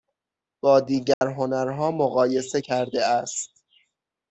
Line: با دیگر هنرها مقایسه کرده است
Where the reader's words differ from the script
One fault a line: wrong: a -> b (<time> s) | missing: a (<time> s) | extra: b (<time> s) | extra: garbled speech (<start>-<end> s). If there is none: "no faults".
no faults